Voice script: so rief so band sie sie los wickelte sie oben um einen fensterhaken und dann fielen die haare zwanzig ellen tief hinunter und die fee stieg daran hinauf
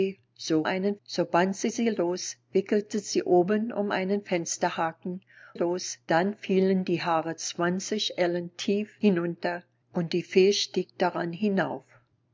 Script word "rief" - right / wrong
wrong